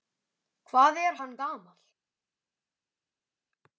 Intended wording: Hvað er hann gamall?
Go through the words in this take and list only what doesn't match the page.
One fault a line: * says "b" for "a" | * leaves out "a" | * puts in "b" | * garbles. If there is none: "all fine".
all fine